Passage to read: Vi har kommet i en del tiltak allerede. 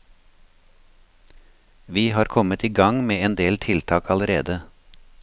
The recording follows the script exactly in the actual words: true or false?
false